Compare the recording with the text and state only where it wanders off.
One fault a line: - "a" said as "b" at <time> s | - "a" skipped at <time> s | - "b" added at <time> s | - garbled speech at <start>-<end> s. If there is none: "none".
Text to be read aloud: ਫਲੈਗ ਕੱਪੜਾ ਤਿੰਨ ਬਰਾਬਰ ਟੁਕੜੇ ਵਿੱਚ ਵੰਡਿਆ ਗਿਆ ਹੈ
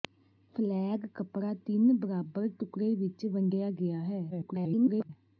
- garbled speech at 4.3-5.1 s